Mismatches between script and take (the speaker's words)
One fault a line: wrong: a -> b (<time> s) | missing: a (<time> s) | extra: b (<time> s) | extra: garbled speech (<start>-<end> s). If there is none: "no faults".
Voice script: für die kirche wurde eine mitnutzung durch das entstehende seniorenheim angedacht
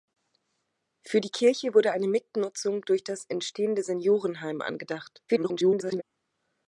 extra: garbled speech (5.3-6.0 s)